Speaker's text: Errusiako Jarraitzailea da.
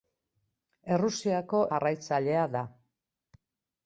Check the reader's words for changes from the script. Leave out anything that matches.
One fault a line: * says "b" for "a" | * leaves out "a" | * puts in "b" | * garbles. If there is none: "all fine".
all fine